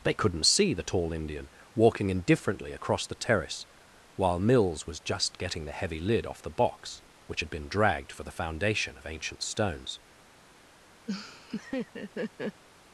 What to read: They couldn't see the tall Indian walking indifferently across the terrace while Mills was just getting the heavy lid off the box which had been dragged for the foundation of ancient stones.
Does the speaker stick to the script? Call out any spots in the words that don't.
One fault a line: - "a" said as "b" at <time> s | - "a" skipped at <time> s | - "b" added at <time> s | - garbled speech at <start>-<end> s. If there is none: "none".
none